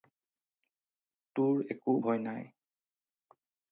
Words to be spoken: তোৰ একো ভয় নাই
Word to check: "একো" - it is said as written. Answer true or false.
true